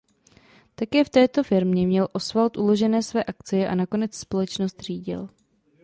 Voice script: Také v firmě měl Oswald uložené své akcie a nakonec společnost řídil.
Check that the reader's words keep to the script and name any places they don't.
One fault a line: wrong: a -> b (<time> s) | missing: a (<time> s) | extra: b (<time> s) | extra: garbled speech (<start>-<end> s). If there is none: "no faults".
extra: této (1.1 s)